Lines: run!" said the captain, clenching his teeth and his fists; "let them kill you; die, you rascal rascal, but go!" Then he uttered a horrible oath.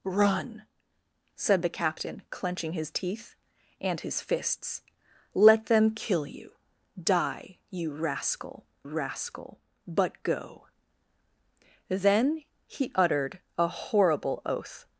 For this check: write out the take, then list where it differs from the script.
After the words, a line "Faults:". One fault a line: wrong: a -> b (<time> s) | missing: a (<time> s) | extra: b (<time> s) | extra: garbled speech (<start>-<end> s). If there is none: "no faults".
run!" said the captain, clenching his teeth and his fists; "let them kill you; die, you rascal rascal, but go!" Then he uttered a horrible oath.
Faults:
no faults